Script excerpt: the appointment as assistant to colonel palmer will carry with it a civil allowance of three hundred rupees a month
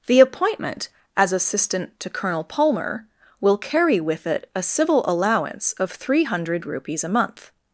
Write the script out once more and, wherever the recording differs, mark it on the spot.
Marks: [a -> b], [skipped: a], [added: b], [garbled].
the appointment as assistant to colonel palmer will carry with it a civil allowance of three hundred rupees a month